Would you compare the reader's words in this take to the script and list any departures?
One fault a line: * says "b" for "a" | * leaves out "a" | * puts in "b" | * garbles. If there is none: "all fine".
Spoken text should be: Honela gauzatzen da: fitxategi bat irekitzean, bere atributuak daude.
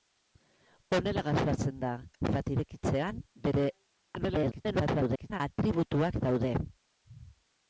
* leaves out "fitxategi"
* garbles